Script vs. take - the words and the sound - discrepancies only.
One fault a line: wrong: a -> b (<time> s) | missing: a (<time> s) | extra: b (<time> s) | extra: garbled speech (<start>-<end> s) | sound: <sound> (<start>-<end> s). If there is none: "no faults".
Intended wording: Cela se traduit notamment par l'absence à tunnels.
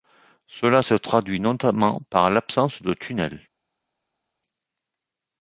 wrong: à -> de (2.8 s)